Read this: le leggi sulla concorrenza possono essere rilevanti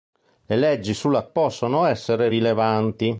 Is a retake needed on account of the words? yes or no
yes